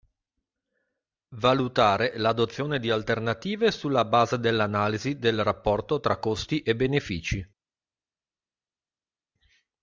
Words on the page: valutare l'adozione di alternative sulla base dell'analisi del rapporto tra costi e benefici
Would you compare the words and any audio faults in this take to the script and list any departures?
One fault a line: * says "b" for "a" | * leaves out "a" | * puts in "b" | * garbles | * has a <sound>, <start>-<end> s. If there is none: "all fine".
all fine